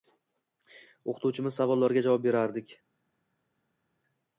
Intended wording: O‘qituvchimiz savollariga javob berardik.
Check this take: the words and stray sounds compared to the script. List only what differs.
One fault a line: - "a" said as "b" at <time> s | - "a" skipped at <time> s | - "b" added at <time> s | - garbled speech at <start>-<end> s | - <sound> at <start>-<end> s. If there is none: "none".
none